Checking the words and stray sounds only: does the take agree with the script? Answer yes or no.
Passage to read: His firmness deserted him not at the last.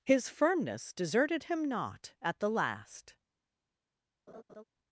no